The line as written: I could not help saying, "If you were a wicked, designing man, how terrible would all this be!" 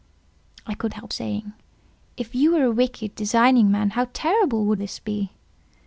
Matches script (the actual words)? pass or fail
fail